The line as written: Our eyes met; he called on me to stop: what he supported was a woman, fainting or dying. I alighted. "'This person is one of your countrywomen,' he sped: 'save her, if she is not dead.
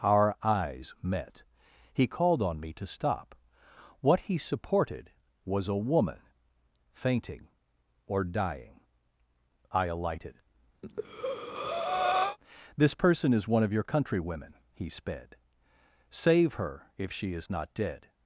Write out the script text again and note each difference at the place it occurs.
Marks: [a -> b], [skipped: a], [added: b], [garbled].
Our eyes met; he called on me to stop: what he supported was a woman, fainting or dying. I alighted. "'This person is one of your countrywomen,' he sped: 'save her, if she is not dead.